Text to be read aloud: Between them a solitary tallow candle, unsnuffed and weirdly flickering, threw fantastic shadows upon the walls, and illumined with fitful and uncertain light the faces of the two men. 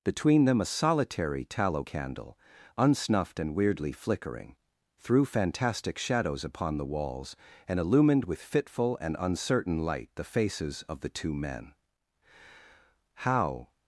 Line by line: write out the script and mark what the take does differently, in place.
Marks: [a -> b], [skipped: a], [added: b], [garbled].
Between them a solitary tallow candle, unsnuffed and weirdly flickering, threw fantastic shadows upon the walls, and illumined with fitful and uncertain light the faces of the two men. [added: How]